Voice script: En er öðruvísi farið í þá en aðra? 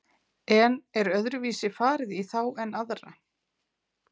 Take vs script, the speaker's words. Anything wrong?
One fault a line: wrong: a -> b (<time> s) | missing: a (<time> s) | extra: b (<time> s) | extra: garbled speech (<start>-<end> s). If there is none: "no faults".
no faults